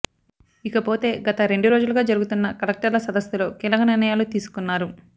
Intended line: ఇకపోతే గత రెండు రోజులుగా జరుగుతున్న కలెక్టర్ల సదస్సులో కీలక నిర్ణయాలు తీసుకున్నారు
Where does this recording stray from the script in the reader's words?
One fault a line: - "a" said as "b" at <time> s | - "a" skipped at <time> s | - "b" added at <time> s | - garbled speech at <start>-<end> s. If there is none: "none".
none